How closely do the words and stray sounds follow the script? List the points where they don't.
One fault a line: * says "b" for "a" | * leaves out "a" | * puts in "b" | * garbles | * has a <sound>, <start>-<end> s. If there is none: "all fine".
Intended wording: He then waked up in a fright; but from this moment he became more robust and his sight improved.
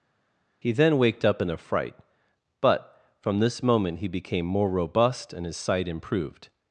all fine